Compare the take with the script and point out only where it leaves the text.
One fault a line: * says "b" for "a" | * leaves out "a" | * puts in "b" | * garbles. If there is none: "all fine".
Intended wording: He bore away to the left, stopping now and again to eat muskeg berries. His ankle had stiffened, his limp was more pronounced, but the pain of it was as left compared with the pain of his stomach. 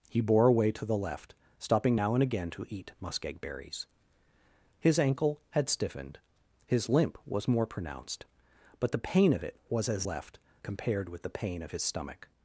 all fine